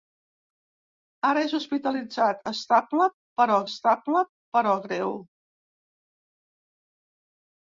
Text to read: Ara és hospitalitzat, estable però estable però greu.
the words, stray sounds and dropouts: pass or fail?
pass